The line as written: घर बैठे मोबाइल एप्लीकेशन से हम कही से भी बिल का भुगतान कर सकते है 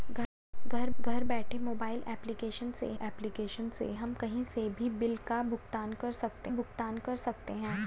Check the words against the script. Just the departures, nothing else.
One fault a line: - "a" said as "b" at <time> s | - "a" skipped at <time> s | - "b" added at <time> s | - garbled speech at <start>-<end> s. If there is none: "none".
- "घर" added at 1.0 s
- "एप्लीकेशन से" added at 3.0 s
- "भुगतान कर सकते" added at 6.5 s